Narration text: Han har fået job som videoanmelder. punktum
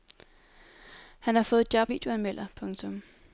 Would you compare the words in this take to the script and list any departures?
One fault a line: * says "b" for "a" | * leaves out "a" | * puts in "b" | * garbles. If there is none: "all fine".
* leaves out "som"